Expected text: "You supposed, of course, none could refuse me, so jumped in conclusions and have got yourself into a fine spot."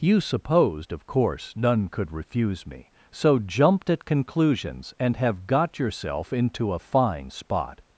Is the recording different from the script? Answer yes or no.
yes